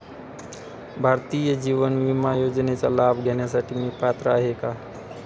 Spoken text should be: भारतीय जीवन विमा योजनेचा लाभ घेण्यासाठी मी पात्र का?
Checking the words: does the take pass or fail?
fail